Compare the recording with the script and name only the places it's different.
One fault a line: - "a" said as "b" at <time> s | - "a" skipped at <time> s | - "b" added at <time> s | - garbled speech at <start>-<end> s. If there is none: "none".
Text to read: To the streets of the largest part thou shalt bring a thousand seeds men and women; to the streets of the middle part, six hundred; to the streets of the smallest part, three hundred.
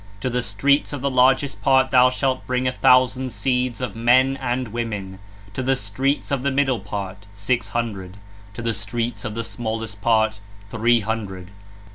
- "of" added at 3.8 s